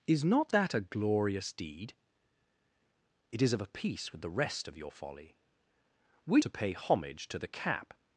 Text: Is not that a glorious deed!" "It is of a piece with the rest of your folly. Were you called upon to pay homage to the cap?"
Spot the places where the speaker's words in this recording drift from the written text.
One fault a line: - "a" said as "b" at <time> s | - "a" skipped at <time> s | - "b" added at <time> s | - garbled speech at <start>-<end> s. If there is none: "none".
- "you called upon" skipped at 6.4 s